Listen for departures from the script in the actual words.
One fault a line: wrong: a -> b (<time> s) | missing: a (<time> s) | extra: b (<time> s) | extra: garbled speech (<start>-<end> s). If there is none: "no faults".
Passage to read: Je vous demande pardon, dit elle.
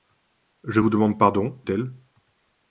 missing: dit (1.6 s)